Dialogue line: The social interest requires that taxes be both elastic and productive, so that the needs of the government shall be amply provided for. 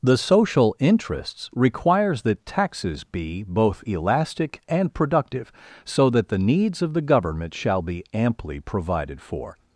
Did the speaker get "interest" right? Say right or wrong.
wrong